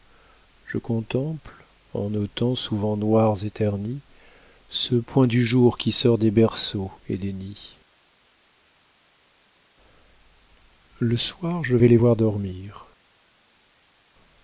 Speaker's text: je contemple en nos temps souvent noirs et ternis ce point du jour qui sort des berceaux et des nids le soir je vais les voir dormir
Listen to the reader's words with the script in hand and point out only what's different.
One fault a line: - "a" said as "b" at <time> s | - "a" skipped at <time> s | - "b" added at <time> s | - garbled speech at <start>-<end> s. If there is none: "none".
none